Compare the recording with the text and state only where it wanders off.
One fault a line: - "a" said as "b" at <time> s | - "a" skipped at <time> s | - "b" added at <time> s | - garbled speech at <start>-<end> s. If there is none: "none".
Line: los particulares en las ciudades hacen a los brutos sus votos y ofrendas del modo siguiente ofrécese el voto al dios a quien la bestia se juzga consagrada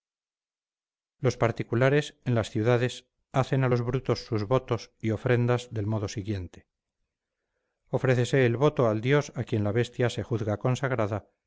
none